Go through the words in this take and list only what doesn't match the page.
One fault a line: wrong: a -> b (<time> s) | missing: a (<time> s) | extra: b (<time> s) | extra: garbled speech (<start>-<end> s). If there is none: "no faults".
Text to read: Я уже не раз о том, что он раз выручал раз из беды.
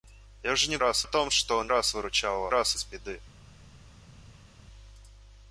no faults